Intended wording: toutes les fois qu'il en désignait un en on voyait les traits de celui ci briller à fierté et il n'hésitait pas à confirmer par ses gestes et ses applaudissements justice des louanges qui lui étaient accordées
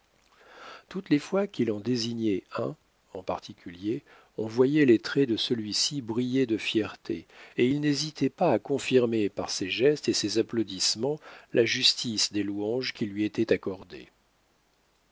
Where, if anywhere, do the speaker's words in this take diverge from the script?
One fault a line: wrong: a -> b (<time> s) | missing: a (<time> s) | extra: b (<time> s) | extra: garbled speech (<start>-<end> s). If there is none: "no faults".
extra: particulier (3.2 s)
wrong: à -> de (6.5 s)
extra: la (11.5 s)